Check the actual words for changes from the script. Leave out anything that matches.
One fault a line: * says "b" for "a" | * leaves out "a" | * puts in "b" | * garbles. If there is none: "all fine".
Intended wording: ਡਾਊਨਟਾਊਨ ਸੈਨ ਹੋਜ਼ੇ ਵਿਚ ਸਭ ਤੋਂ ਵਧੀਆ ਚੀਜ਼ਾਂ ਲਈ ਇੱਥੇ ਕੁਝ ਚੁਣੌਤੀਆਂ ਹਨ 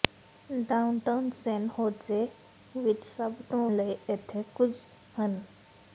* leaves out "ਵਧੀਆ ਚੀਜ਼ਾਂ"
* leaves out "ਚੁਣੌਤੀਆਂ"